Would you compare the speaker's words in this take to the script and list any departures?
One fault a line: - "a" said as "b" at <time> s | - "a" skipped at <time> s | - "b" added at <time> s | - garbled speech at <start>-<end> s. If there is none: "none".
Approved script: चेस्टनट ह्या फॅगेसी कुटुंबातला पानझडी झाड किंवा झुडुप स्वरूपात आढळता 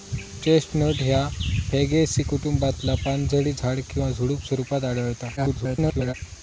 - garbled speech at 5.4-6.1 s